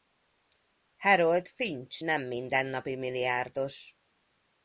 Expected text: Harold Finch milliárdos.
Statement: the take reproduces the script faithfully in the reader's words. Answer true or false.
false